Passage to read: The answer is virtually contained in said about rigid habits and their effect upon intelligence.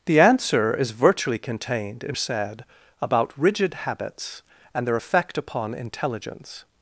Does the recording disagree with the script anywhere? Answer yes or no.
no